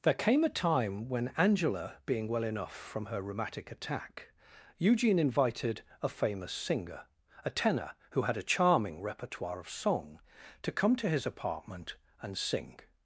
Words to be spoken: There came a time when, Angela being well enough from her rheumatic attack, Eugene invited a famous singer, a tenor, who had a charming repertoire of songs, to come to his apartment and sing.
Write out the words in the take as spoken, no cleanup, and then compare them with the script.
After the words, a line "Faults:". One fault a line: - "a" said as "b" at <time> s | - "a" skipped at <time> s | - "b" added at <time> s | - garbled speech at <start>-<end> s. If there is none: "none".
There came a time when, Angela being well enough from her rheumatic attack, Eugene invited a famous singer, a tenor, who had a charming repertoire of song, to come to his apartment and sing.
Faults:
- "songs" said as "song" at 9.7 s